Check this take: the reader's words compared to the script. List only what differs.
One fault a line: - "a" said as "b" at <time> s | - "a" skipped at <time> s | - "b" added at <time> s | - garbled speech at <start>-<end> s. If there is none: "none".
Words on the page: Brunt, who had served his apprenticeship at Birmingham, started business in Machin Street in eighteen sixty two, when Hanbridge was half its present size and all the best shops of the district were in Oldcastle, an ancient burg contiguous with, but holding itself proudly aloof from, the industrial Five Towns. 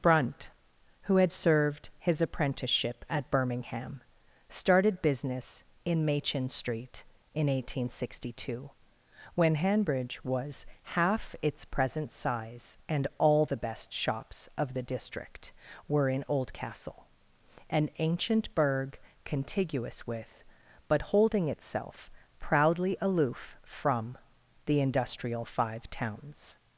none